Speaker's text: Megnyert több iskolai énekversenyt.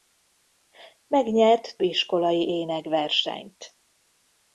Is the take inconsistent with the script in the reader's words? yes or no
yes